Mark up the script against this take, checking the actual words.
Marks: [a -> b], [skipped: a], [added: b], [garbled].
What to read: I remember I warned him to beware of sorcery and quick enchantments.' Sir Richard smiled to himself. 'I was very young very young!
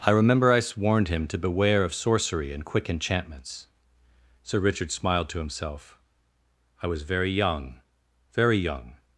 I remember I warned him to beware of sorcery and quick enchantments.' Sir Richard smiled to himself. 'I was very young very young!